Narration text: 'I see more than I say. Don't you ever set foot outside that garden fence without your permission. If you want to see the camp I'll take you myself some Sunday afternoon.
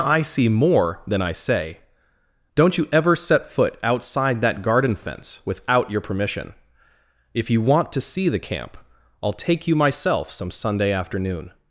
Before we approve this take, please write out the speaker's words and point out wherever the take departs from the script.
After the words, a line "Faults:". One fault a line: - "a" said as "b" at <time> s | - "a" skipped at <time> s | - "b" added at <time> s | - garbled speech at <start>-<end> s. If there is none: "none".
'I see more than I say. Don't you ever set foot outside that garden fence without your permission. If you want to see the camp I'll take you myself some Sunday afternoon.
Faults:
none